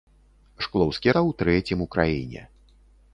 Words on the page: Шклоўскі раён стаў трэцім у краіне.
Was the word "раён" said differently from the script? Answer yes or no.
yes